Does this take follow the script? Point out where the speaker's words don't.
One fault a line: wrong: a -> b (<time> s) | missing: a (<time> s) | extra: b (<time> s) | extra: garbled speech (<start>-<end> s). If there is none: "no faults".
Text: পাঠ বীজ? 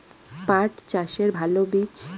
extra: চাষের ভালো (0.9 s)